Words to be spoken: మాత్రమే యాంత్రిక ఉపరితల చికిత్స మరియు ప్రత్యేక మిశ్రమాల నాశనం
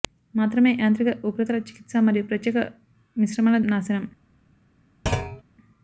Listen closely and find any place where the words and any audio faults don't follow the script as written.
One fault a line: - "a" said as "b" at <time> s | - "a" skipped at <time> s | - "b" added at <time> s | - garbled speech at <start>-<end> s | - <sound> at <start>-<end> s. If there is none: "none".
- thud at 5.1-5.4 s